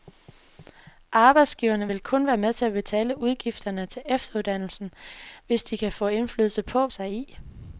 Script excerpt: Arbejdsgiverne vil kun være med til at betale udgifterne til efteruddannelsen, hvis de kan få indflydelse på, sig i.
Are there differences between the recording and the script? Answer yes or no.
no